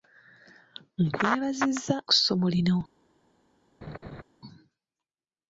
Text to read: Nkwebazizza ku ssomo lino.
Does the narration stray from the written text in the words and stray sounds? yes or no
yes